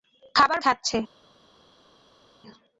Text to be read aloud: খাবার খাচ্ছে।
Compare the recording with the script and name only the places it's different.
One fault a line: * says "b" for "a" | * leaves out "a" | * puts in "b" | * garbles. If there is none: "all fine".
all fine